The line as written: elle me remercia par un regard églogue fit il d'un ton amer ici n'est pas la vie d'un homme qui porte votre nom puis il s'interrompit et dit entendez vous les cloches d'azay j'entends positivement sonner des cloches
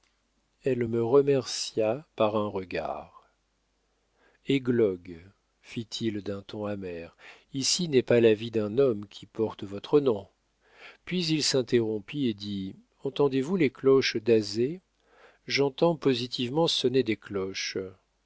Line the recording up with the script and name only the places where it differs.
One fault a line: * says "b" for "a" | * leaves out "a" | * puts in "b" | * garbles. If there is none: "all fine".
all fine